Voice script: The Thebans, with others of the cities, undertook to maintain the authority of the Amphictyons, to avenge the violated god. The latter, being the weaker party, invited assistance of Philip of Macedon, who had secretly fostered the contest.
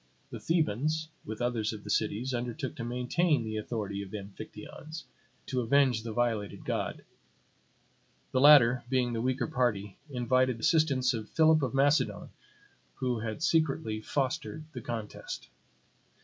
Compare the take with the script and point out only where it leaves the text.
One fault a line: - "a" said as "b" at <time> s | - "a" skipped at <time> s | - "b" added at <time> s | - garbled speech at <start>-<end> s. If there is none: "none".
none